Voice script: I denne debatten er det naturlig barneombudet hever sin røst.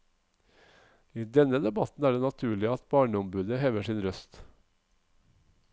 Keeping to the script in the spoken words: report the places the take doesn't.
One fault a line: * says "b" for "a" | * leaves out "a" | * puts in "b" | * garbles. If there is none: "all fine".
* puts in "at"